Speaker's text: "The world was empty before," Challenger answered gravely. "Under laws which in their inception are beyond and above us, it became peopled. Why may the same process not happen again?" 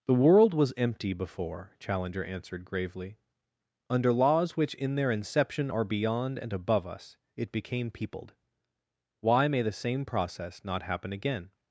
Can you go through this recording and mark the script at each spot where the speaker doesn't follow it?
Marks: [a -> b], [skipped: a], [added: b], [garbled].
"The world was empty before," Challenger answered gravely. "Under laws which in their inception are beyond and above us, it became peopled. Why may the same process not happen again?"